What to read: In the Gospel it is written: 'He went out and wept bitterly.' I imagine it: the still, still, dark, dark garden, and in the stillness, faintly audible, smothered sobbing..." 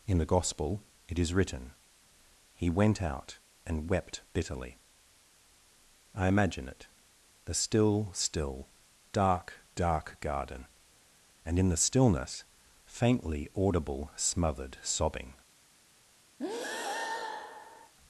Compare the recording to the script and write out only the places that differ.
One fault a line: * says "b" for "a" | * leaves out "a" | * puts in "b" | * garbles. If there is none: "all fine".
all fine